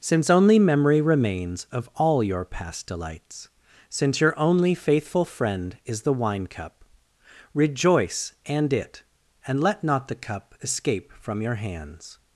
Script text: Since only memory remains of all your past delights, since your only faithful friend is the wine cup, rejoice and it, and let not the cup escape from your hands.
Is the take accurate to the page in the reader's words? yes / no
yes